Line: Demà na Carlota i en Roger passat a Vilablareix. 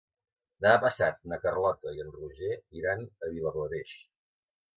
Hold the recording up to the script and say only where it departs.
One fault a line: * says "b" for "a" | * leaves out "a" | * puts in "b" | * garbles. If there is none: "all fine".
* puts in "passat"
* says "iran" for "passat"